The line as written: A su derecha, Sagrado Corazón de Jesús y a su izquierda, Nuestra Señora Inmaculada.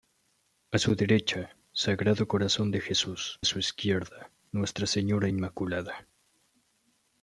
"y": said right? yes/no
no